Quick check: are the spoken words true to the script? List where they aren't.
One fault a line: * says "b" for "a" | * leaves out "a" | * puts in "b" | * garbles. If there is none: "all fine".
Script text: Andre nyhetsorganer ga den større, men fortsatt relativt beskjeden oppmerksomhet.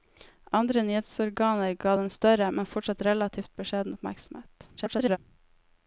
* garbles